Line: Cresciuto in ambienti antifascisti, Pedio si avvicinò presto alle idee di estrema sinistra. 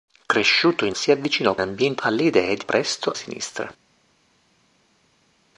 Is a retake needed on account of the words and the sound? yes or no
yes